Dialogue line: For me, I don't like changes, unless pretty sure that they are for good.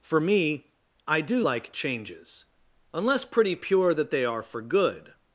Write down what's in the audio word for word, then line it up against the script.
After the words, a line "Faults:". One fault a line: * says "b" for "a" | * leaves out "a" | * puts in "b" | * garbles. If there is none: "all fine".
For me, I do like changes, unless pretty pure that they are for good.
Faults:
* says "do" for "don't"
* says "pure" for "sure"